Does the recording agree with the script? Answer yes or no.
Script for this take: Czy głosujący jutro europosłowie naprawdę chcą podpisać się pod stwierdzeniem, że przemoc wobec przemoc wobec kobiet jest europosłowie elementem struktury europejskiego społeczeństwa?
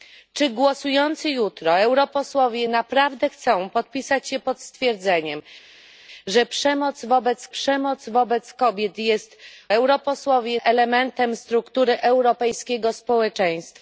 yes